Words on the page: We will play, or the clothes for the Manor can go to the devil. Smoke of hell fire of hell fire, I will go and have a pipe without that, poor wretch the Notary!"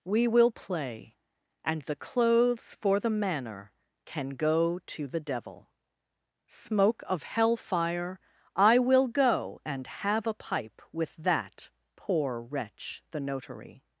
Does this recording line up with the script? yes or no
no